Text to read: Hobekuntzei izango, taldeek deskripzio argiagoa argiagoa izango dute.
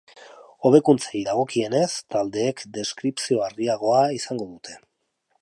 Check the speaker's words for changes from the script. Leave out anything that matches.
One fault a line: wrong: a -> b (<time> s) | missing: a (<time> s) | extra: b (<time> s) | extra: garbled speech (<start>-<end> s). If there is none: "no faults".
wrong: izango -> dagokienez (1.2 s)
missing: argiagoa (4.1 s)